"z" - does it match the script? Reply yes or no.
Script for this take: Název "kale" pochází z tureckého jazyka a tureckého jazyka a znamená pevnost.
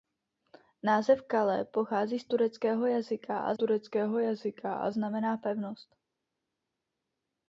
yes